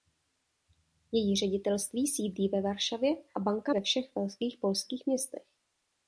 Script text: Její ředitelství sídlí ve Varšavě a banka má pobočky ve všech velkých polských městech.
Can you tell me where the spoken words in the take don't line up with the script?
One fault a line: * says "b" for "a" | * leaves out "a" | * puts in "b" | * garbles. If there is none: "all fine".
* leaves out "má pobočky"